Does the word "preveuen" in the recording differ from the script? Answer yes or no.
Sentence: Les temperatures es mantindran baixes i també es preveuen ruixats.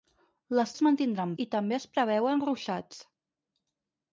no